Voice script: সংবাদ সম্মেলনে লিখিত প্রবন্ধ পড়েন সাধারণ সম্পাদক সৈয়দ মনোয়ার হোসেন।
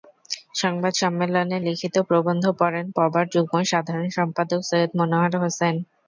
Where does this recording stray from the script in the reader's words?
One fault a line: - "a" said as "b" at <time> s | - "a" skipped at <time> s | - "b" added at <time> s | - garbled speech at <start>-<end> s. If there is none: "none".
- "পবার যুগ্ম" added at 3.0 s